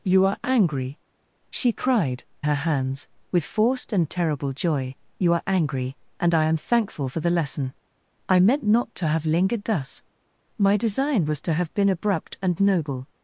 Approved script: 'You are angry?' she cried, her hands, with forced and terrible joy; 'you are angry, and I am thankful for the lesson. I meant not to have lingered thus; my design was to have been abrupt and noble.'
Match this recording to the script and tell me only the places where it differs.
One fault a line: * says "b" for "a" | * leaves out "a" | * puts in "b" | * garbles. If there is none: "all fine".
all fine